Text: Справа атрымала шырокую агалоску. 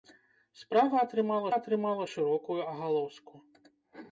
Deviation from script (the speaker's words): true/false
true